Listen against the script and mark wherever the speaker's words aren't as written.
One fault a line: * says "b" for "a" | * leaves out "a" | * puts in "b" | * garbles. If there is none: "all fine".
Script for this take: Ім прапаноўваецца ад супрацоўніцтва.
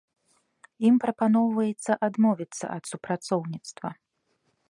* puts in "адмовіцца"